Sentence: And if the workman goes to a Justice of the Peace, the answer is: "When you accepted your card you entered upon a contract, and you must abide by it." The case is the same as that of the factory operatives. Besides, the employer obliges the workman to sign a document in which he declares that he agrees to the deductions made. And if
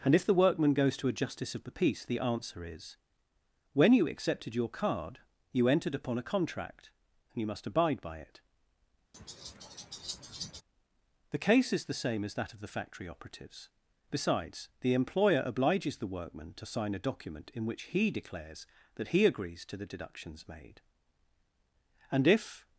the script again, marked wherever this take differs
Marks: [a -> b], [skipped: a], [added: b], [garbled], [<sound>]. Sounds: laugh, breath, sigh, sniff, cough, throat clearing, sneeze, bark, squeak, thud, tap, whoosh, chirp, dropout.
And if the workman goes to a Justice of the Peace, the answer is: "When you accepted your card you entered upon a contract, and you must abide by it." [laugh] The case is the same as that of the factory operatives. Besides, the employer obliges the workman to sign a document in which he declares that he agrees to the deductions made. And if